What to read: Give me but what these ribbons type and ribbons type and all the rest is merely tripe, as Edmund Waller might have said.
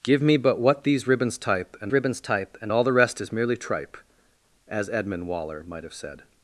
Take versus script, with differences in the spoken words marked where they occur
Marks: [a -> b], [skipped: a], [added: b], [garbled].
Give me but what these ribbons type and ribbons type and all the rest is merely tripe, as Edmund Waller might have said.